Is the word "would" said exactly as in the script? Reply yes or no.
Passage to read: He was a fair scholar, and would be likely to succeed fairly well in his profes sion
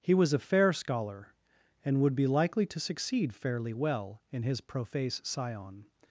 yes